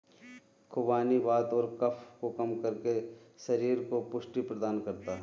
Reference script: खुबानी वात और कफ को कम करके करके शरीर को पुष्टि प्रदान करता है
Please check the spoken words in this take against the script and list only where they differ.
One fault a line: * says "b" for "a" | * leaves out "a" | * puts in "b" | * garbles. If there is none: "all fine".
* leaves out "करके"